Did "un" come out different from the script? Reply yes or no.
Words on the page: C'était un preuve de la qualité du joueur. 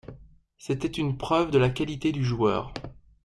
yes